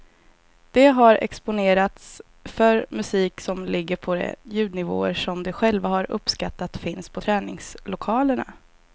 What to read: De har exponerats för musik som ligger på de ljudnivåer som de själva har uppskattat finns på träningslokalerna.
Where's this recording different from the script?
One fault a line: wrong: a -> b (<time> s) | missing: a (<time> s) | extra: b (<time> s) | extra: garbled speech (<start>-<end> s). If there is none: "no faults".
no faults